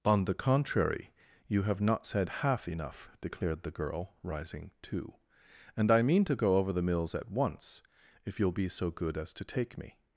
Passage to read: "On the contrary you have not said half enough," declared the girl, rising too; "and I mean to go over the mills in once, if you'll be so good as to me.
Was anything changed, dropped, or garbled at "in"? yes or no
yes